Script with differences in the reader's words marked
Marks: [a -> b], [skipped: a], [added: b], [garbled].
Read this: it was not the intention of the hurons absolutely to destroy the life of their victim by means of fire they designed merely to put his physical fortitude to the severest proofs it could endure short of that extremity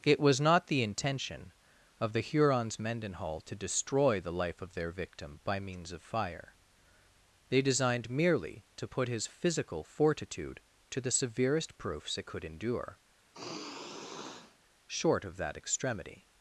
it was not the intention of the hurons [absolutely -> mendenhall] to destroy the life of their victim by means of fire they designed merely to put his physical fortitude to the severest proofs it could endure short of that extremity